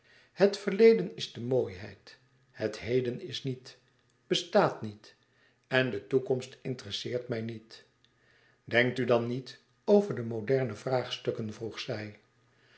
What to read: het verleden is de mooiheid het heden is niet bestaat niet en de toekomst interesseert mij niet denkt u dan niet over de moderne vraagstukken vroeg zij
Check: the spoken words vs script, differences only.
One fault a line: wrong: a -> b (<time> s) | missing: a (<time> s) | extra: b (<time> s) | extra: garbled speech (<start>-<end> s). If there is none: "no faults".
no faults